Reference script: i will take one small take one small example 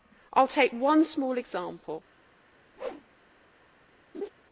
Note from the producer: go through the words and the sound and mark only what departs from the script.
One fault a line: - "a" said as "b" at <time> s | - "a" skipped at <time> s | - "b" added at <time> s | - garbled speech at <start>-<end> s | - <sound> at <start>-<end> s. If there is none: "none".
- "take one small" skipped at 1.4 s
- whoosh at 2.8-3.1 s
- laugh at 4.1-4.3 s